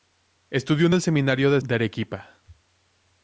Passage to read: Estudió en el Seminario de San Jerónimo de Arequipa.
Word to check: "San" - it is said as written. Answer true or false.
false